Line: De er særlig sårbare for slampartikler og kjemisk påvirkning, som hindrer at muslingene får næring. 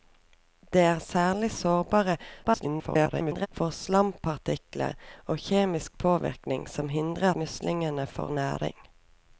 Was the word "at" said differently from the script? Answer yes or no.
yes